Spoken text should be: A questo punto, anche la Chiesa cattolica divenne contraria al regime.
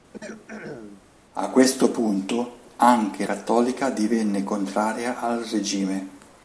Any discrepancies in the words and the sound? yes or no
yes